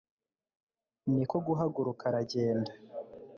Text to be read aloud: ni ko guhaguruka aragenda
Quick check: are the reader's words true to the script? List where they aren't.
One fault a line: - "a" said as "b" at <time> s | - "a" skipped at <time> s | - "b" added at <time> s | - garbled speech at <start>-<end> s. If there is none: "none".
none